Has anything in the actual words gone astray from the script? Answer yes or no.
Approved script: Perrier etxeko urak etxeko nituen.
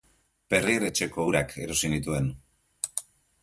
yes